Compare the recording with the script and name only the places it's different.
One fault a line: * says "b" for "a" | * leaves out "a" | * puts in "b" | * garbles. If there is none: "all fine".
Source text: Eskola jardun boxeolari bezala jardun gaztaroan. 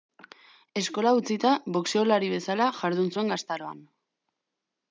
* says "utzita" for "jardun"
* puts in "zuen"